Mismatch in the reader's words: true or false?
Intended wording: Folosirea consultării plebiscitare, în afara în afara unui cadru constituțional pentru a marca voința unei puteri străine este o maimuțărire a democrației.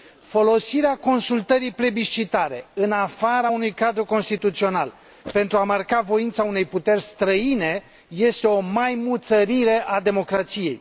true